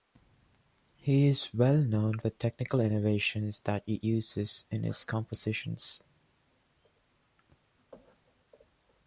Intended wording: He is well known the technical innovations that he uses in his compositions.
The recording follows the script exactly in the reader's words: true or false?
true